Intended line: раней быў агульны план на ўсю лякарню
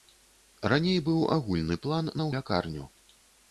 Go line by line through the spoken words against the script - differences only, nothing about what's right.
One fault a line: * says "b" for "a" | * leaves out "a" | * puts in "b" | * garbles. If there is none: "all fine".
* leaves out "ўсю"